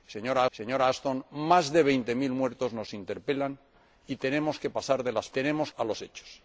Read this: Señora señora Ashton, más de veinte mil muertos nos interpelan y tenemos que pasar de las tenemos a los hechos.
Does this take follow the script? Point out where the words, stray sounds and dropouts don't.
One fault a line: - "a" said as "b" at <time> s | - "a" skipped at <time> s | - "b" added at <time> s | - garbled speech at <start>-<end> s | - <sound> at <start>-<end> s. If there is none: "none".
none